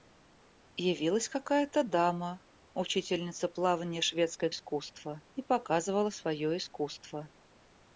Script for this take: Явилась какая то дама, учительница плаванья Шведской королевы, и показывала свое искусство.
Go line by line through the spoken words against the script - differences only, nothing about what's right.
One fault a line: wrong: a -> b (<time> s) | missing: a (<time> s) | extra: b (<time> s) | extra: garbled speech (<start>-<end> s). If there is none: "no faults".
wrong: королевы -> искусство (4.5 s)